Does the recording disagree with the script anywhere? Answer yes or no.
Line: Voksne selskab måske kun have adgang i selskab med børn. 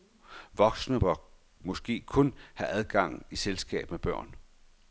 yes